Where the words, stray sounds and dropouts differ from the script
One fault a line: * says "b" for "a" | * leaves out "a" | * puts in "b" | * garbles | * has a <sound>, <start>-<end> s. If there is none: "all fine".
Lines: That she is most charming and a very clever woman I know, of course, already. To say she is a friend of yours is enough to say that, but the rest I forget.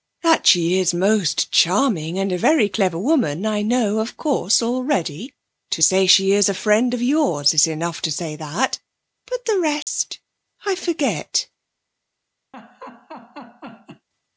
* has a dropout, 9.8-9.9 s
* has a laugh, 12.5-14.1 s